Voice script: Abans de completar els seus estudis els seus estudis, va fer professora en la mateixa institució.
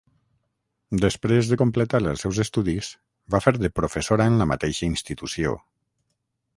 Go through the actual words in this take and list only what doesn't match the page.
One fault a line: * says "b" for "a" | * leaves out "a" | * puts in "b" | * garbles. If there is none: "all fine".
* says "Després" for "Abans"
* leaves out "els seus estudis"
* puts in "de"